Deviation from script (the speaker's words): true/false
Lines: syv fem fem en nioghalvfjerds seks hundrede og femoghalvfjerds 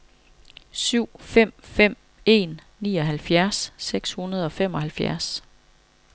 false